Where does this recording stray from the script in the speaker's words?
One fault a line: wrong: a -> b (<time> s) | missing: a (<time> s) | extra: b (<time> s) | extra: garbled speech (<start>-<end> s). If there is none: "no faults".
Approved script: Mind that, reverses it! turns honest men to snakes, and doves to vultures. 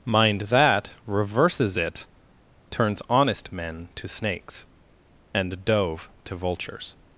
wrong: doves -> dove (5.6 s)